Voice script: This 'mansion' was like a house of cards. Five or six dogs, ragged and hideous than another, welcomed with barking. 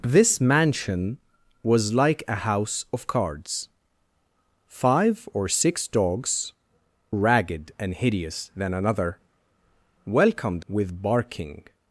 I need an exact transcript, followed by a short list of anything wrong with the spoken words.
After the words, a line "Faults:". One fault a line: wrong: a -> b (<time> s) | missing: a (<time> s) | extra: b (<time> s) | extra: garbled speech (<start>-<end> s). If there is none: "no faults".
This 'mansion' was like a house of cards. Five or six dogs, ragged and hideous than another, welcomed with barking.
Faults:
no faults